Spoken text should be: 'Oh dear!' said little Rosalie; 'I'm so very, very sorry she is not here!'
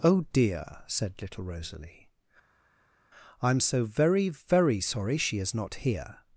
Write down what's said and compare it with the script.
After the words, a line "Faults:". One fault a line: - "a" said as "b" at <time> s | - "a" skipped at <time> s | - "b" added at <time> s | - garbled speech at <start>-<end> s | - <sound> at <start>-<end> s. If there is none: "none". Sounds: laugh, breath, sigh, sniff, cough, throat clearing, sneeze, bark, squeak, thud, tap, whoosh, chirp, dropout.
'Oh dear!' said little Rosalie; 'I'm so very, very sorry she is not here!'
Faults:
none